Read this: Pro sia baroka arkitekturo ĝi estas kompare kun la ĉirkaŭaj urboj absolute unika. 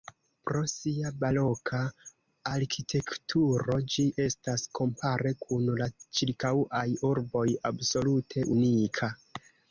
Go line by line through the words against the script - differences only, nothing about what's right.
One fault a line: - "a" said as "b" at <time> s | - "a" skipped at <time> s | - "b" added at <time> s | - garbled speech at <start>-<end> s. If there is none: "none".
none